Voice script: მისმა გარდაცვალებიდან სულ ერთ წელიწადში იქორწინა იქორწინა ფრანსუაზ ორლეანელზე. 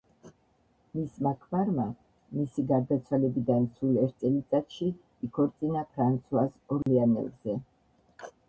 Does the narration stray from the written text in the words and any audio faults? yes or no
yes